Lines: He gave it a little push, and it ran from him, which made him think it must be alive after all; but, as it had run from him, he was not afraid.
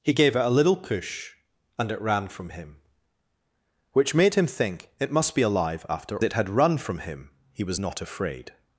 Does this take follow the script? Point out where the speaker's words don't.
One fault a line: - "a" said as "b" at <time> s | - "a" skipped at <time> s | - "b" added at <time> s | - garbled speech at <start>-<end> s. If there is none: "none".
- "all but as" skipped at 6.2 s